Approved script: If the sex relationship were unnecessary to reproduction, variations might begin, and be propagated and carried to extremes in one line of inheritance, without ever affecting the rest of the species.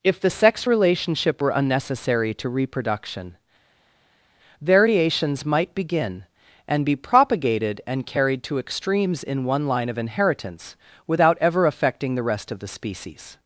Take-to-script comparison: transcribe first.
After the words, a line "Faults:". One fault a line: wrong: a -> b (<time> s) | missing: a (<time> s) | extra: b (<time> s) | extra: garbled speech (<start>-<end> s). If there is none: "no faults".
If the sex relationship were unnecessary to reproduction, variations might begin, and be propagated and carried to extremes in one line of inheritance, without ever affecting the rest of the species.
Faults:
no faults